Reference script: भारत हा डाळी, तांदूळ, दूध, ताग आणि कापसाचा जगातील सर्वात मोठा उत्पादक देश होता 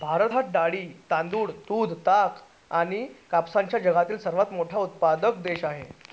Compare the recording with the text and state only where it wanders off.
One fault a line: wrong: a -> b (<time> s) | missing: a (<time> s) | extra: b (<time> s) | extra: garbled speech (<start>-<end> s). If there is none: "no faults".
wrong: होता -> आहे (5.6 s)